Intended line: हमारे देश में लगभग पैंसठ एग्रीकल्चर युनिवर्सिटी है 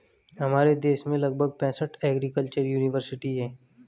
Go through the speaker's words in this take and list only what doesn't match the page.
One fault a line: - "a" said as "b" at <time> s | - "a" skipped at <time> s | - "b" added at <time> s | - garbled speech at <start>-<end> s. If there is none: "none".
none